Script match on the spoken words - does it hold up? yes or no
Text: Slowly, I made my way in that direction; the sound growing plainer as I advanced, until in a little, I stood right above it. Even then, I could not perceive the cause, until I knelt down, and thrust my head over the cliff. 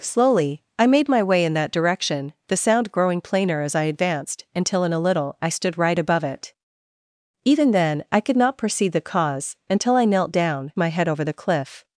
no